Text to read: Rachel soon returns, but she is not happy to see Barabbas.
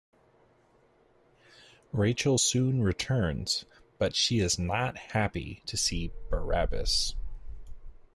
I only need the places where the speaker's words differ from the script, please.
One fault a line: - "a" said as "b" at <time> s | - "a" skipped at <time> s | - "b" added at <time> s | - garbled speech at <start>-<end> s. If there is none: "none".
none